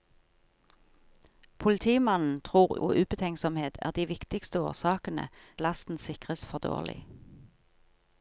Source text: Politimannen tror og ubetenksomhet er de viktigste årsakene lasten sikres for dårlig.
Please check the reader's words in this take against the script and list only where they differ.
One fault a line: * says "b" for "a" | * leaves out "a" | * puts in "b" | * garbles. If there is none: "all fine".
all fine